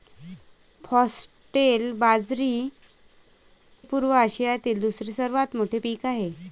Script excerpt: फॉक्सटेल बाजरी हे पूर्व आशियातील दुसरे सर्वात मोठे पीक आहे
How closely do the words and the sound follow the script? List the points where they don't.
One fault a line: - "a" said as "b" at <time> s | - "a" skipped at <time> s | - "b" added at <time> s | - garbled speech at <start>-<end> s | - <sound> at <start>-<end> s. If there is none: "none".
- "हे" skipped at 2.7 s